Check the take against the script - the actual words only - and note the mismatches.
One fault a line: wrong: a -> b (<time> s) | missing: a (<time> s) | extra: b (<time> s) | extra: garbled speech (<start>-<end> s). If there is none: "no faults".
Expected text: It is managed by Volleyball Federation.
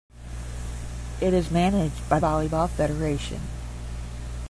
no faults